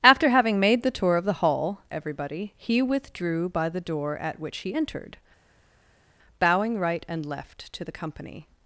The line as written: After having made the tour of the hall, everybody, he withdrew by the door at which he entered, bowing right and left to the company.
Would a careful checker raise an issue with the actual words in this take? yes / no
no